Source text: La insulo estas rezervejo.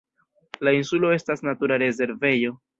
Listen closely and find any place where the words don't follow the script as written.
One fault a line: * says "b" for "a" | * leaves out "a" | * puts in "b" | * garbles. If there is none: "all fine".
* puts in "natura"